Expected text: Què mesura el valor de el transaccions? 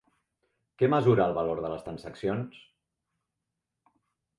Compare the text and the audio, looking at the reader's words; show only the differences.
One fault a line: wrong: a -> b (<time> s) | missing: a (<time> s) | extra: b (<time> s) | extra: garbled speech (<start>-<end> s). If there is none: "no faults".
wrong: el -> les (1.7 s)